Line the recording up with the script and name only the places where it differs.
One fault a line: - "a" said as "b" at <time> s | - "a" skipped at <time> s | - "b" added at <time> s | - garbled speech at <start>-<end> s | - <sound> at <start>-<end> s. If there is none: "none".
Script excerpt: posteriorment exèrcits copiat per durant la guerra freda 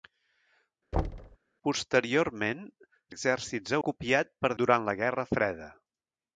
- thud at 0.9-1.4 s